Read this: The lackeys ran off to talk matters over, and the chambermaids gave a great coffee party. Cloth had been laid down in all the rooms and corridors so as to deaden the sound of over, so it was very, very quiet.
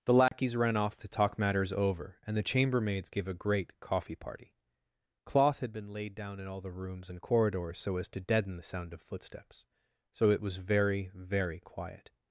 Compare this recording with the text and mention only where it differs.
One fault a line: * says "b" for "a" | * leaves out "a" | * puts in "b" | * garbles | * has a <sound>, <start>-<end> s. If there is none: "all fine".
* has a dropout, 0.3-0.3 s
* says "footsteps" for "over"